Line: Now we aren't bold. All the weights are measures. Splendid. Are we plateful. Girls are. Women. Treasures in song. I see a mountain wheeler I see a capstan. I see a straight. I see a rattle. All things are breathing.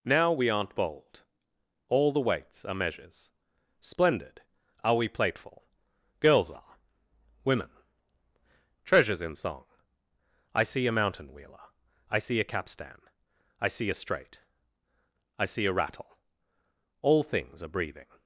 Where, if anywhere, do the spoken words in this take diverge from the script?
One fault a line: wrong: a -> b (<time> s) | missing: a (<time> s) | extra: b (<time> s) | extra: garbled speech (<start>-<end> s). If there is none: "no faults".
no faults